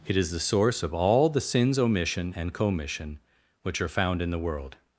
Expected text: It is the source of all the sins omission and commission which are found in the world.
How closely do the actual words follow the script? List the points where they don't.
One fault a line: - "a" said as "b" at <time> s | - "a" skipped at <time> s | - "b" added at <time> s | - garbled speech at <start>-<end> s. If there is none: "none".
none